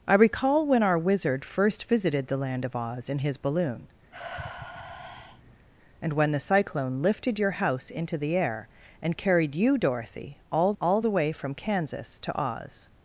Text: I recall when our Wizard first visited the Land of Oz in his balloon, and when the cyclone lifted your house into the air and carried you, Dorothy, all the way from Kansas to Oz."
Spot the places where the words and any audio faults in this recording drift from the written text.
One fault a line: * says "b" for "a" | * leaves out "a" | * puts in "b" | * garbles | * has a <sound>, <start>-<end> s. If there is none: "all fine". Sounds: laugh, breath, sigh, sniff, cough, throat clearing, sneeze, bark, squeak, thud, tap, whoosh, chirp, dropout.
* has a sigh, 4.1-5.7 s
* puts in "all"